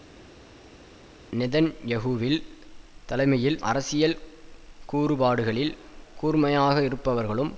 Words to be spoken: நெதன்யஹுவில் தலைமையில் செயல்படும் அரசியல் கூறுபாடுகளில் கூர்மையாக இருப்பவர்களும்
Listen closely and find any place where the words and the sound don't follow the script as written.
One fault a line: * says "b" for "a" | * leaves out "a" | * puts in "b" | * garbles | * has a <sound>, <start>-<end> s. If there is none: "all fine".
* leaves out "செயல்படும்"